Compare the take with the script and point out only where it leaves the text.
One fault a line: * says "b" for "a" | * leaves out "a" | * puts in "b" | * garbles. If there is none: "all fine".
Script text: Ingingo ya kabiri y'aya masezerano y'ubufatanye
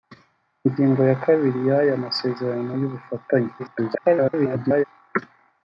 * garbles